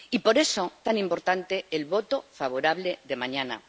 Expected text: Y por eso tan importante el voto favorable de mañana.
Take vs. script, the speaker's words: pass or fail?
pass